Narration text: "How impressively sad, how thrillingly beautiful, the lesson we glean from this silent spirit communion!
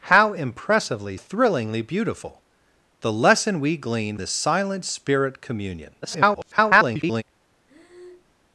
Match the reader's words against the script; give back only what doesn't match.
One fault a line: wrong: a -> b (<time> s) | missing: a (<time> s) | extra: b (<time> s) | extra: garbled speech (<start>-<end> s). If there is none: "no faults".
missing: sad how (1.2 s)
missing: from (4.2 s)
extra: garbled speech (6.0-7.2 s)